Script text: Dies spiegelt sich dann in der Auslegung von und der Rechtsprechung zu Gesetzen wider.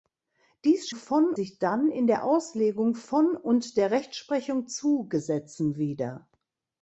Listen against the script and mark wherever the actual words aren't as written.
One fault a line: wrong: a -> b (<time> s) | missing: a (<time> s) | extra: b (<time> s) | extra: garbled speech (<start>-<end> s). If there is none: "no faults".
wrong: spiegelt -> von (0.9 s)